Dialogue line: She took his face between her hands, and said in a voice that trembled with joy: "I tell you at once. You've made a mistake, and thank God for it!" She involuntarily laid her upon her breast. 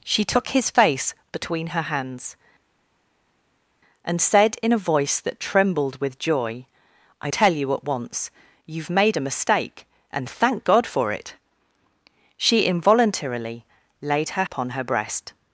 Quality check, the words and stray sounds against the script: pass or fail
pass